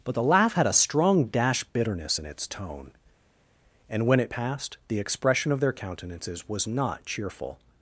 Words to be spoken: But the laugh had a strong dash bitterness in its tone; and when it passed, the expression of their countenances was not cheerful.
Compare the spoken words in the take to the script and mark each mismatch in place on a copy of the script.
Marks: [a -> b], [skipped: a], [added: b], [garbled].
But the laugh had a strong dash bitterness in its tone; and when it passed, the expression of their countenances was not cheerful.